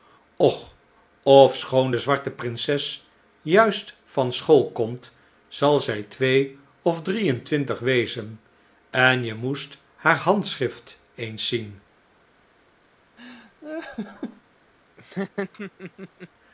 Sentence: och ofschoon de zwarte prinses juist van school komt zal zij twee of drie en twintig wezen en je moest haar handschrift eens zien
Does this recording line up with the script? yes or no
yes